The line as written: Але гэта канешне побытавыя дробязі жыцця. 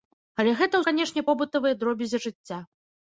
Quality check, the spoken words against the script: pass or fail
pass